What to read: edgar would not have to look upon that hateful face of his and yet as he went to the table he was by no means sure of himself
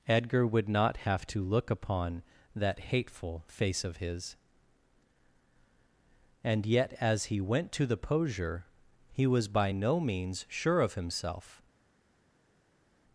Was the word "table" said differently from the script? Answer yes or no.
yes